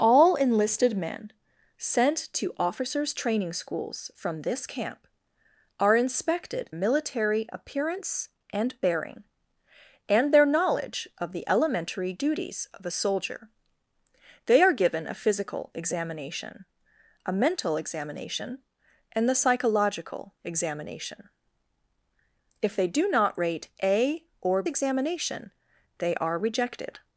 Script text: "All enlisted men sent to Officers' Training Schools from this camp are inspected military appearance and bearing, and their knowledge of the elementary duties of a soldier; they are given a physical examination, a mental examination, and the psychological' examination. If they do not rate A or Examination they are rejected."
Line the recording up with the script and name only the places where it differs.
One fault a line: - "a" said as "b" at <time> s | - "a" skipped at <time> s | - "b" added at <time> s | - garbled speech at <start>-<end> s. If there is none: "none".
none